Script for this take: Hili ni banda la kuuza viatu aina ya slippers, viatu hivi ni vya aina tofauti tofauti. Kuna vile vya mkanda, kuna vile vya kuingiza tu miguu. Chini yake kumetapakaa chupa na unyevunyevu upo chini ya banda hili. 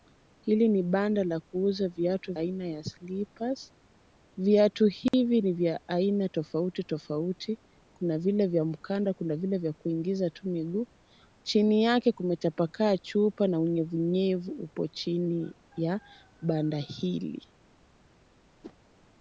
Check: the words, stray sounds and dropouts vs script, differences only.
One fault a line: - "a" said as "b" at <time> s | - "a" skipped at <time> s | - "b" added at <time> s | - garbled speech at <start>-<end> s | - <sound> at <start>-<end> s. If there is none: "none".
- dropout at 5.1-5.1 s
- whoosh at 18.6-18.7 s